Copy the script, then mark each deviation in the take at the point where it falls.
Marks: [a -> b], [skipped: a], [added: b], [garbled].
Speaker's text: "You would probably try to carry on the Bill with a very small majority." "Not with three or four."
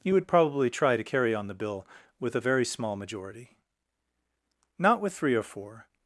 "You would probably try to carry on the Bill with a very small majority." "Not with three or four."